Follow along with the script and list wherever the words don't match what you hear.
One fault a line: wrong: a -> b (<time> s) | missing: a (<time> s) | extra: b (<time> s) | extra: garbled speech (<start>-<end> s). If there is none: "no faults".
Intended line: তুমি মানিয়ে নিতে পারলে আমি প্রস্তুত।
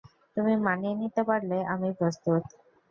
no faults